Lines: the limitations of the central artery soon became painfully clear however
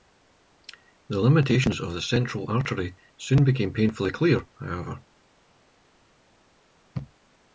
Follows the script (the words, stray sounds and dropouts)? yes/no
yes